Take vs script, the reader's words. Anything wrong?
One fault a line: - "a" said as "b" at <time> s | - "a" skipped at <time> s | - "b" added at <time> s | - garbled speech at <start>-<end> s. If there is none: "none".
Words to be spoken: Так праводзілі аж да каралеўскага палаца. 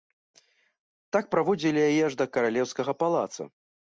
- "яе" added at 1.9 s